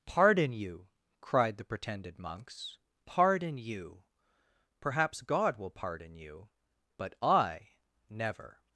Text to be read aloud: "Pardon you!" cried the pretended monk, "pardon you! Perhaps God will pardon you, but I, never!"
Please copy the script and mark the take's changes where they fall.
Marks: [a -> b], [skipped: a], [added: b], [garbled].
"Pardon you!" cried the pretended [monk, -> monks] "pardon you! Perhaps God will pardon you, but I, never!"